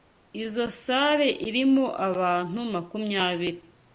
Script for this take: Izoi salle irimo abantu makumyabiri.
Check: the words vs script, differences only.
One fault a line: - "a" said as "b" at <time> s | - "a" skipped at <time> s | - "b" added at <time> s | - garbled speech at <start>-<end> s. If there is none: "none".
none